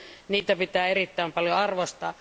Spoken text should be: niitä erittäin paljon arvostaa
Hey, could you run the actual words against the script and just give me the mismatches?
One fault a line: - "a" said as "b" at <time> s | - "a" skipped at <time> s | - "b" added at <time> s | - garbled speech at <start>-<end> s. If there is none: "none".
- "pitää" added at 0.6 s